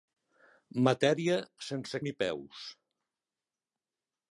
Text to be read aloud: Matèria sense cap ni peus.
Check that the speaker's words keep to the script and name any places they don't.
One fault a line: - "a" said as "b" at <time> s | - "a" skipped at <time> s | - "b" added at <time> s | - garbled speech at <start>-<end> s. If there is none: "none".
- "cap" skipped at 2.0 s